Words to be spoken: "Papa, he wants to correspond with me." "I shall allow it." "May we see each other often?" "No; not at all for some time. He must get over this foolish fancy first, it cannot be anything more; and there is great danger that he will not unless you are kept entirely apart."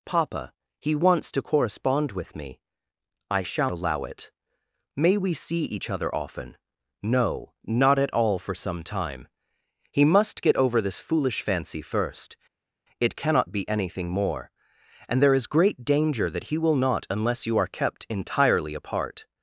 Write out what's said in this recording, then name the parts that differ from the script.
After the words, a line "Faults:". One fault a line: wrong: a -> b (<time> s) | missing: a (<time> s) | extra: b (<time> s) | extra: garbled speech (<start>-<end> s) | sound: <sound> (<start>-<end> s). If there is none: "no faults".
"Papa, he wants to correspond with me." "I shall allow it." "May we see each other often?" "No; not at all for some time. He must get over this foolish fancy first, it cannot be anything more; and there is great danger that he will not unless you are kept entirely apart."
Faults:
no faults